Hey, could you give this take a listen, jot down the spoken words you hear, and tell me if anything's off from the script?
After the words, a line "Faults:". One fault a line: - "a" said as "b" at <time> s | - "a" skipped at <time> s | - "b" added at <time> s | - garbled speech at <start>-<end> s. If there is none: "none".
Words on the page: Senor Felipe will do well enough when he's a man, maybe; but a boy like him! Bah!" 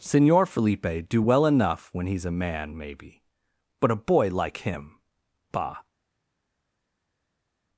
Senor Felipe do well enough when he's a man, maybe; but a boy like him! Bah!"
Faults:
- "will" skipped at 1.1 s